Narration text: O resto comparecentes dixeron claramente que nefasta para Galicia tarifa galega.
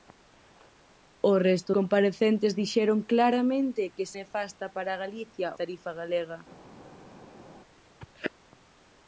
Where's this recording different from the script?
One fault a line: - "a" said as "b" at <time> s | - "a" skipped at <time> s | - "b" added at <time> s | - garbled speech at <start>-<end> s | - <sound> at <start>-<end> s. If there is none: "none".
none